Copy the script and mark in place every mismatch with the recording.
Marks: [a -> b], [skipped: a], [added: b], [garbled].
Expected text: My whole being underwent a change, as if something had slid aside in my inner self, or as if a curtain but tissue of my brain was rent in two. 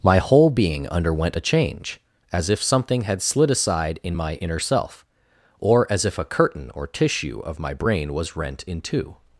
My whole being underwent a change, as if something had slid aside in my inner self, or as if a curtain [but -> or] tissue of my brain was rent in two.